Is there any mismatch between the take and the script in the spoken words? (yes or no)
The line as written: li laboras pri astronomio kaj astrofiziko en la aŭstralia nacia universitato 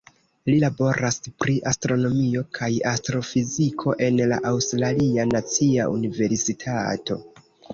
no